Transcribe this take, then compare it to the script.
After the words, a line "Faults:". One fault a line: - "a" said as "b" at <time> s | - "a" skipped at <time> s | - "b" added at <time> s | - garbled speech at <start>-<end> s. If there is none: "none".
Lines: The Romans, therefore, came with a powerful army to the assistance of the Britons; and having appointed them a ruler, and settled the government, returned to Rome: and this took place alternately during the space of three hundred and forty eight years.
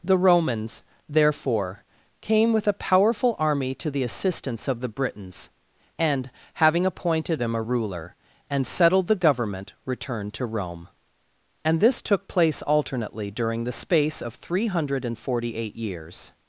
The Romans, therefore, came with a powerful army to the assistance of the Britons; and having appointed them a ruler, and settled the government, returned to Rome: and this took place alternately during the space of three hundred and forty eight years.
Faults:
none